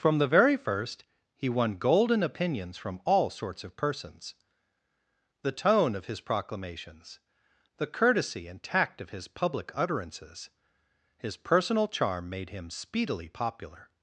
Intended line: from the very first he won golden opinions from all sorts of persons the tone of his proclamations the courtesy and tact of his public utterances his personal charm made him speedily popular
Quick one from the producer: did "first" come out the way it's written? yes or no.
yes